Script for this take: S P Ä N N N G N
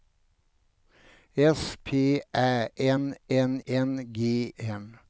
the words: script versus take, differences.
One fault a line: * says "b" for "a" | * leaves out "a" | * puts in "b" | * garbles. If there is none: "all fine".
all fine